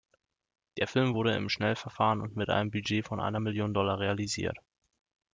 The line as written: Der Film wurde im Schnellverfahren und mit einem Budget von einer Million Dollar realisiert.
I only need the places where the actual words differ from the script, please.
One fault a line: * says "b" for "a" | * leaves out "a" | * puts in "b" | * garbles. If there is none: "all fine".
all fine